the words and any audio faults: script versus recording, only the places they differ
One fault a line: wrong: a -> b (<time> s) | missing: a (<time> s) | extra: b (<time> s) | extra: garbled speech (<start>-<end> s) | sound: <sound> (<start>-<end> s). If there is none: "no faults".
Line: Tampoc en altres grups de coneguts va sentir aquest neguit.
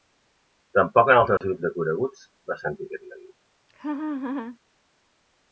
sound: dropout (1.4-1.4 s)
sound: laugh (3.7-4.6 s)